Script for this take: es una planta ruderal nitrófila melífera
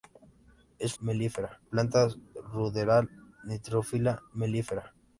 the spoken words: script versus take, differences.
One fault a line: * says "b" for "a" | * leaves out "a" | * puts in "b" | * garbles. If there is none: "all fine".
* says "melífera" for "una"